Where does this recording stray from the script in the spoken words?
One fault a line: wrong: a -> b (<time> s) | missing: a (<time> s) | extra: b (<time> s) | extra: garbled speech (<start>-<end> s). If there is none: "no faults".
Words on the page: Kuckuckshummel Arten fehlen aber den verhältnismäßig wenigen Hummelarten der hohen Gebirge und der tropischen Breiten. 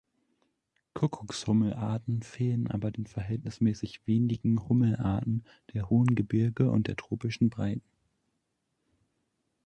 no faults